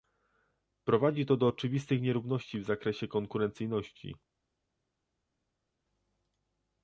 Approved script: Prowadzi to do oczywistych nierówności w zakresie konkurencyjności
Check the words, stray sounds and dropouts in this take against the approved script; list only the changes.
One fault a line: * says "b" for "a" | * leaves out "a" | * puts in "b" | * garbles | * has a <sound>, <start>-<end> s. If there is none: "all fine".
all fine